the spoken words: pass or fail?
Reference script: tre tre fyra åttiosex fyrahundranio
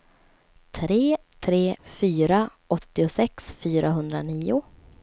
pass